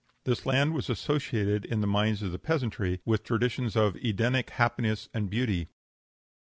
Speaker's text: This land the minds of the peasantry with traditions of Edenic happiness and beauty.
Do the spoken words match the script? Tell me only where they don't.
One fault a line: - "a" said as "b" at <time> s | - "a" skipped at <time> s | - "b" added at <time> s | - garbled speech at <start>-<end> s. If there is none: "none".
- "was associated in" added at 0.7 s